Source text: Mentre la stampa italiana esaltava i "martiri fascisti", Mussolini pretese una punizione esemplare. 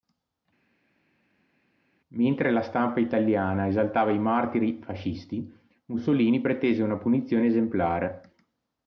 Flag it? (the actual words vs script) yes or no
no